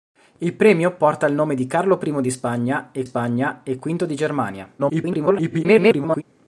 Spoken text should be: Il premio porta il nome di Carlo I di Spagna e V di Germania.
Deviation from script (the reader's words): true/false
true